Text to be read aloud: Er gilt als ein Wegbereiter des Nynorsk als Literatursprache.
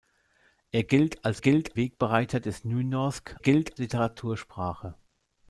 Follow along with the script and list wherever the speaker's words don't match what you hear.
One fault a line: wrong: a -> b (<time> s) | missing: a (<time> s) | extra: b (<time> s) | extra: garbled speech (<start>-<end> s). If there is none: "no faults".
wrong: ein -> gilt (1.4 s)
wrong: als -> gilt (3.4 s)